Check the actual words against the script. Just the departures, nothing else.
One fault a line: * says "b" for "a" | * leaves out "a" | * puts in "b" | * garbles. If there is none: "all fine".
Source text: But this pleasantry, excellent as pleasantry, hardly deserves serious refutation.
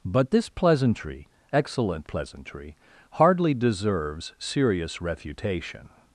* leaves out "as"